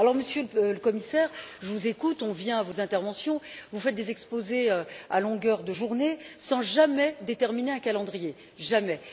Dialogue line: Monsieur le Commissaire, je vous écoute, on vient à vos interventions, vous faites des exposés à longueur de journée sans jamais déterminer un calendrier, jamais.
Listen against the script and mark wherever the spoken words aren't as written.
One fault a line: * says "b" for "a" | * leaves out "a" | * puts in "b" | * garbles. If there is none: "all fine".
all fine